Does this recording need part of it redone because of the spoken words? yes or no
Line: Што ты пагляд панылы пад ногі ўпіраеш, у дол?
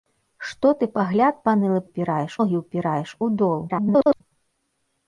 yes